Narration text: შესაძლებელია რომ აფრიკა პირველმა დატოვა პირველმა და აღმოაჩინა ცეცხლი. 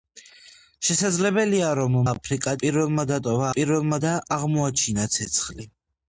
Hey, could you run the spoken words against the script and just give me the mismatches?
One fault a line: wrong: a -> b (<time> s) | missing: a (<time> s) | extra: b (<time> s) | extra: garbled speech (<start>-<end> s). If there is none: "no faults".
no faults